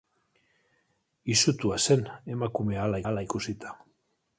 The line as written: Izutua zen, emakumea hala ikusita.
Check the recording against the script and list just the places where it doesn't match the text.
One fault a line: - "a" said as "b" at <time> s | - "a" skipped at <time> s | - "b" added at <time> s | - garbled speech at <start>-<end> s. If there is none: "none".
- "hala" added at 3.1 s